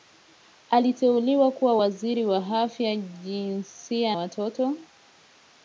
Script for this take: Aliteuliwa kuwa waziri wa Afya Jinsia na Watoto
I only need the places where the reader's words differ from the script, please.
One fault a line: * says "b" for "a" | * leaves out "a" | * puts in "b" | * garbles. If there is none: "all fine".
* leaves out "na"